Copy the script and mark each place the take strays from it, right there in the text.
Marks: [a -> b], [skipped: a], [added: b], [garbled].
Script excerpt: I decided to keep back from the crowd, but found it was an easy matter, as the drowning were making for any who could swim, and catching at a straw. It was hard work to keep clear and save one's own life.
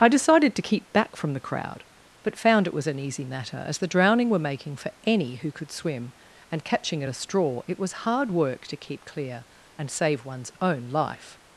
I decided to keep back from the crowd, but found it was an easy matter, as the drowning were making for any who could swim, and catching at a straw. It was hard work to keep clear and save one's own life.